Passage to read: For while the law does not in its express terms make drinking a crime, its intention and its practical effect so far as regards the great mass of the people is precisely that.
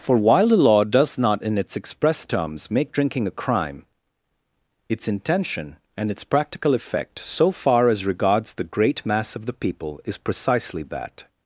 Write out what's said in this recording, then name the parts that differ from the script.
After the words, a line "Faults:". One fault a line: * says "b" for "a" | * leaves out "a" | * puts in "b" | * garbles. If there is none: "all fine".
For while the law does not in its express terms make drinking a crime, its intention and its practical effect so far as regards the great mass of the people is precisely that.
Faults:
all fine